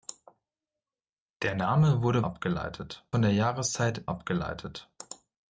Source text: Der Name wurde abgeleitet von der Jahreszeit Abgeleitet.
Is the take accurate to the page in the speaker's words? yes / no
yes